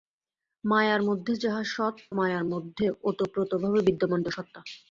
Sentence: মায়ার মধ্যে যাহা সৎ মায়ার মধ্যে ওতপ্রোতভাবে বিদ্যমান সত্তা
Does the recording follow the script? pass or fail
pass